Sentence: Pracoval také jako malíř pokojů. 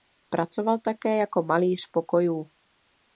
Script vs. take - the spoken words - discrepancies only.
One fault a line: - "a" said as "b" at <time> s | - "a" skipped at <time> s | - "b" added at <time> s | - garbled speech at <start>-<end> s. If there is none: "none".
none